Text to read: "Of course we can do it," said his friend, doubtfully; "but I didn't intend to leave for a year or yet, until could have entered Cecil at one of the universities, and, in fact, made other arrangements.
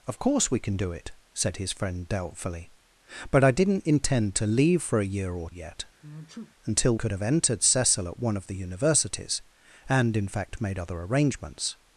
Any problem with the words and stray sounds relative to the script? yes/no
yes